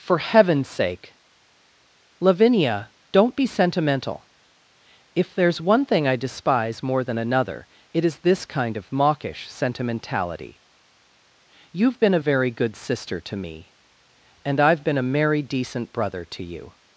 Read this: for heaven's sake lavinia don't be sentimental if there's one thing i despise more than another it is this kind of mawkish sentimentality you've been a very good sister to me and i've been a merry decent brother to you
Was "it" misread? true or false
false